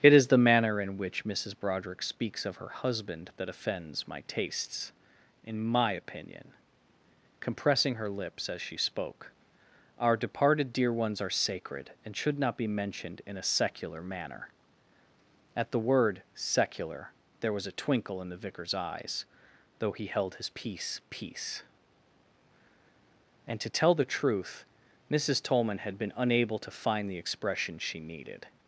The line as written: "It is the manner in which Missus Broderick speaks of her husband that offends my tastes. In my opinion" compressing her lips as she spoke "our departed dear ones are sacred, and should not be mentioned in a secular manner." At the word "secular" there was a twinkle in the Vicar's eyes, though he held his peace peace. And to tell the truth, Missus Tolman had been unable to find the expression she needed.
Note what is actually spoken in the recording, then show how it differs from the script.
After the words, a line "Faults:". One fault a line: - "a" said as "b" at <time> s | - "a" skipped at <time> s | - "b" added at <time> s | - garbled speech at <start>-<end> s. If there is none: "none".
"It is the manner in which Missus Broderick speaks of her husband that offends my tastes. In my opinion" compressing her lips as she spoke "our departed dear ones are sacred, and should not be mentioned in a secular manner." At the word "secular" there was a twinkle in the Vicar's eyes, though he held his peace peace. And to tell the truth, Missus Tolman had been unable to find the expression she needed.
Faults:
none